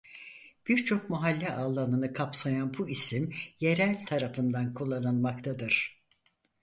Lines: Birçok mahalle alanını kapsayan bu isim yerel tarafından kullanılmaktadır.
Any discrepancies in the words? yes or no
no